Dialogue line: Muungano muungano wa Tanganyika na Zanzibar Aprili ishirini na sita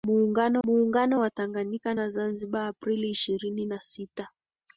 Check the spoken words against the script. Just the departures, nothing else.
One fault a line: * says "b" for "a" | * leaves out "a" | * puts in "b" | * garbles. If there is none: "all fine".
all fine